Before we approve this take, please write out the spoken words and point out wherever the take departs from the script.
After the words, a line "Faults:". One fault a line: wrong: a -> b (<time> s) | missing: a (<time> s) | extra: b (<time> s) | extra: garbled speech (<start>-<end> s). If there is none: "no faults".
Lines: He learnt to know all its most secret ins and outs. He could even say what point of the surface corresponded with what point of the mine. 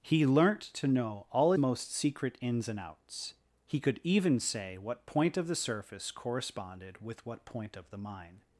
He learnt to know all most secret ins and outs. He could even say what point of the surface corresponded with what point of the mine.
Faults:
missing: its (1.5 s)